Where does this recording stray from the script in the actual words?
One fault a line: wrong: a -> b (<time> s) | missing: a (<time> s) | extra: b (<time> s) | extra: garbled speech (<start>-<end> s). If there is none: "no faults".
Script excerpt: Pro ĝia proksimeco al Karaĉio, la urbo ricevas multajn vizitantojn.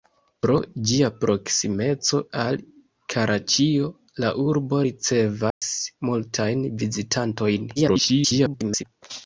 extra: garbled speech (7.8-8.8 s)